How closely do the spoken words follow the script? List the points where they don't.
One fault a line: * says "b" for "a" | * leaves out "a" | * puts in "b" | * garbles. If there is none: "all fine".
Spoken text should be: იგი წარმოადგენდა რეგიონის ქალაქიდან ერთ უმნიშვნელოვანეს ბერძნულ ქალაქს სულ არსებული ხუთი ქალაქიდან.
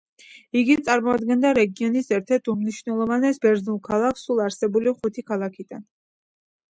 * says "ერთ" for "ქალაქიდან"